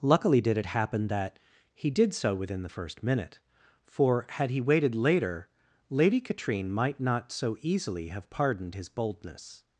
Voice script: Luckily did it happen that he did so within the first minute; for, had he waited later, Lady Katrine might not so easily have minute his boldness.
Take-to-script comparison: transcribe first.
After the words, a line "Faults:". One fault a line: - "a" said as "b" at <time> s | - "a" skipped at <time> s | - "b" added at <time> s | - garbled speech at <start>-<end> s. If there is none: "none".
Luckily did it happen that he did so within the first minute; for, had he waited later, Lady Katrine might not so easily have pardoned his boldness.
Faults:
- "minute" said as "pardoned" at 8.3 s